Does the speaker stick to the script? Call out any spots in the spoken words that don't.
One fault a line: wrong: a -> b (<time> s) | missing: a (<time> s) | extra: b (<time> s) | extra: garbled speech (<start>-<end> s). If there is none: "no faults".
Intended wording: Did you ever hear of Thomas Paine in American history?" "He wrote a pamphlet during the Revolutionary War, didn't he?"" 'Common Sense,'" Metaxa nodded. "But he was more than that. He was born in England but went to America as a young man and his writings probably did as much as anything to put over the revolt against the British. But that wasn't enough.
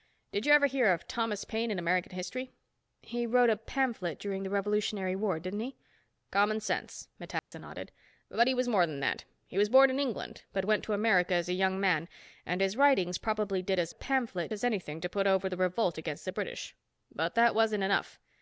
wrong: much -> pamphlet (13.9 s)